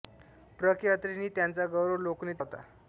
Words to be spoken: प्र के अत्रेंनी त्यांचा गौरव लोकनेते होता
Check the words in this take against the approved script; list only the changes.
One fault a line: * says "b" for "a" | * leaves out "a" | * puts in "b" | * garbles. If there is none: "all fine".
all fine